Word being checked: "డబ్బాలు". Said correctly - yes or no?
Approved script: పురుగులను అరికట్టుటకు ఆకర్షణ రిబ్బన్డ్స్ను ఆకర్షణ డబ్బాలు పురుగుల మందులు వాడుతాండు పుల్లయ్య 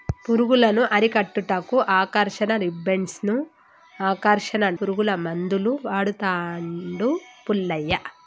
no